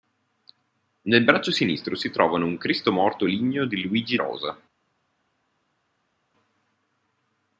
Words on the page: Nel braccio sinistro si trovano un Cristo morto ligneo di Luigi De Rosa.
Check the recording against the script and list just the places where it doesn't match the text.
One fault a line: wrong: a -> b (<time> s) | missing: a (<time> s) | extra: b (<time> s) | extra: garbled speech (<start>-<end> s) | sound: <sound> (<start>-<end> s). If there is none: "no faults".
missing: De (4.2 s)